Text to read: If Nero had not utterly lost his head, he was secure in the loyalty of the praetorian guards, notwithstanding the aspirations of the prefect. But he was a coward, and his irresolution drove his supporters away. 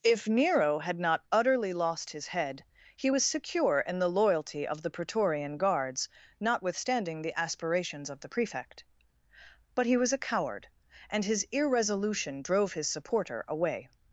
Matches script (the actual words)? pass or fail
fail